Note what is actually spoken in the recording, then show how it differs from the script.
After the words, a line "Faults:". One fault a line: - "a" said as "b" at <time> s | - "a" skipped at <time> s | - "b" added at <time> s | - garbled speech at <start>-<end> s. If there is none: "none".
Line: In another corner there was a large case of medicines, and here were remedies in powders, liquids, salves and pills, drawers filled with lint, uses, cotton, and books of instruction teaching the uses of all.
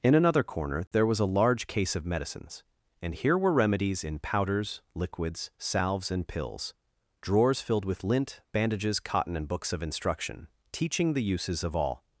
In another corner there was a large case of medicines, and here were remedies in powders, liquids, salves and pills, drawers filled with lint, bandages, cotton, and books of instruction teaching the uses of all.
Faults:
- "uses" said as "bandages" at 8.5 s